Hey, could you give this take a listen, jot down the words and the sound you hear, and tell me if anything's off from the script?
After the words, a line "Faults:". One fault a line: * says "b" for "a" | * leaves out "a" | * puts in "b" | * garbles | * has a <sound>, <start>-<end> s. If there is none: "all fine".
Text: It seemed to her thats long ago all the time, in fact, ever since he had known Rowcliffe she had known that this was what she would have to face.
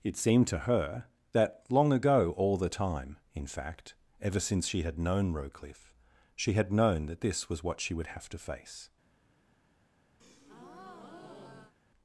It seemed to her that long ago all the time, in fact, ever since she had known Rowcliffe she had known that this was what she would have to face.
Faults:
* says "that" for "thats"
* says "she" for "he"
* has a breath, 10.2-11.7 s